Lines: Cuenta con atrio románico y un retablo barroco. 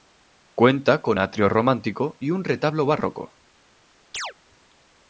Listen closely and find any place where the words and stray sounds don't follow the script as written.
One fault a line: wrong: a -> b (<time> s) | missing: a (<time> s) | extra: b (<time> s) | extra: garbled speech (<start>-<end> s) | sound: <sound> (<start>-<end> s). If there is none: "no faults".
sound: chirp (4.1-4.3 s)